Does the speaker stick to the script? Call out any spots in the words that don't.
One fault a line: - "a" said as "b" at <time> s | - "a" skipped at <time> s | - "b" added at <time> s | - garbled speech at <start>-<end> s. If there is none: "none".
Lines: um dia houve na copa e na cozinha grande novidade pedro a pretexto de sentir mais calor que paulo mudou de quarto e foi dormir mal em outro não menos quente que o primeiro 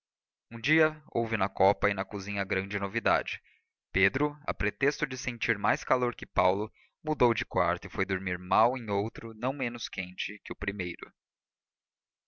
none